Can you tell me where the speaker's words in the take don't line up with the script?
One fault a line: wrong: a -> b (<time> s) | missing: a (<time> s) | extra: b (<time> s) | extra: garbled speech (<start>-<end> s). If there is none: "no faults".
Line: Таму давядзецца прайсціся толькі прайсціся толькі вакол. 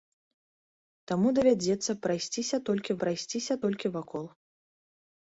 no faults